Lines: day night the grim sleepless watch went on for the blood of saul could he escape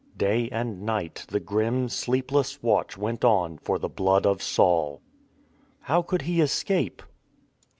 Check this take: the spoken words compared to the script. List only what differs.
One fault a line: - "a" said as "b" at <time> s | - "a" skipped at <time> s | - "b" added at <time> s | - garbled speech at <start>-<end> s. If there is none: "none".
- "and" added at 0.5 s
- "how" added at 5.8 s